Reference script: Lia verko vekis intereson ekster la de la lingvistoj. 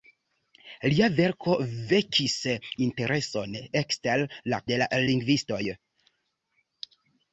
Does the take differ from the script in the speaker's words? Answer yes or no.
no